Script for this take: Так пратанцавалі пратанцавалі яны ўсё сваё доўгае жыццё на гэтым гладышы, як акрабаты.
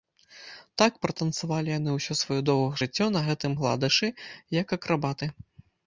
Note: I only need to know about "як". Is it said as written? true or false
true